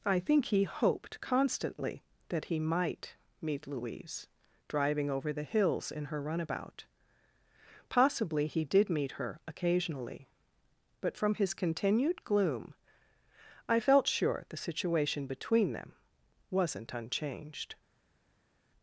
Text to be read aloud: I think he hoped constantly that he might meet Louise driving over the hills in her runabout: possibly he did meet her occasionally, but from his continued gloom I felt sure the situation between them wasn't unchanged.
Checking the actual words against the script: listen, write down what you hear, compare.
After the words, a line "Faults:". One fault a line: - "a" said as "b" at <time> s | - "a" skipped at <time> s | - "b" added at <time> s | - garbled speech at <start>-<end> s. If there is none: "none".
I think he hoped constantly that he might meet Louise driving over the hills in her runabout: possibly he did meet her occasionally, but from his continued gloom I felt sure the situation between them wasn't unchanged.
Faults:
none